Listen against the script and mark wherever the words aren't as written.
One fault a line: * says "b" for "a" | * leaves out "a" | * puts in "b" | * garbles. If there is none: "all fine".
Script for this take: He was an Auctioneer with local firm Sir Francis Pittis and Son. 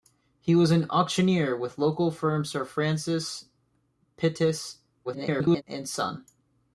* garbles